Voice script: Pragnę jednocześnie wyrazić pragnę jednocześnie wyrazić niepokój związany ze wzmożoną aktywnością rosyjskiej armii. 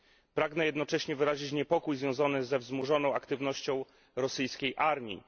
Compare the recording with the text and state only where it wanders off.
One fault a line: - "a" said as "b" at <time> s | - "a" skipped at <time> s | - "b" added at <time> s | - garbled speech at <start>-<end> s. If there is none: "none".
- "pragnę jednocześnie wyrazić" skipped at 1.5 s